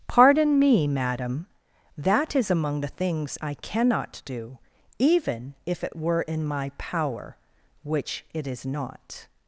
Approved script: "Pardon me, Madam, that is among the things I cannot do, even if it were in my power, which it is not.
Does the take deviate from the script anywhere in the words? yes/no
no